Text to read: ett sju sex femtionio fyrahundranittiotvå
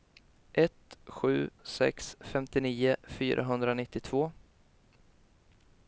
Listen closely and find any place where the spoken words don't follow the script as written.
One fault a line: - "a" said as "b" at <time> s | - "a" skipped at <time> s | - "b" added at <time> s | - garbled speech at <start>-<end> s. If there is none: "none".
none